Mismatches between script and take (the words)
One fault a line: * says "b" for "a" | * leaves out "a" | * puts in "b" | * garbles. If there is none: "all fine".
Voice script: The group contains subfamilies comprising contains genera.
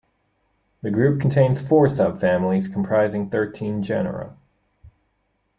* puts in "four"
* says "thirteen" for "contains"